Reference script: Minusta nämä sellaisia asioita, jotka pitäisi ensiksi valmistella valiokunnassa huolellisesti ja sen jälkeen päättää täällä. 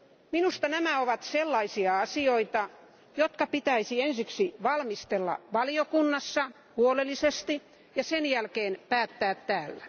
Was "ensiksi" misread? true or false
false